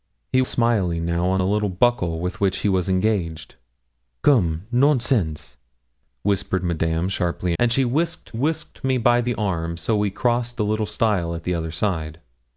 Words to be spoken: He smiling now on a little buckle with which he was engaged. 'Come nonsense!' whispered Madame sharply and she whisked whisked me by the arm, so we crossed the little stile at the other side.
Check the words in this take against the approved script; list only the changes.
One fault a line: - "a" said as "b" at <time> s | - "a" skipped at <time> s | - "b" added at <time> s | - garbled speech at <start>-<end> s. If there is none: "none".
none